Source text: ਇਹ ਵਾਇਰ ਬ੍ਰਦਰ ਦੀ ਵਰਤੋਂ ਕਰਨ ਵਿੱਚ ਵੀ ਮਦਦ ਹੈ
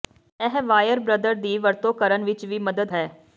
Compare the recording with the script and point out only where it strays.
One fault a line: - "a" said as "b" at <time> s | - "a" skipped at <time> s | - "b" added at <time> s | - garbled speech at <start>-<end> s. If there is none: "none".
none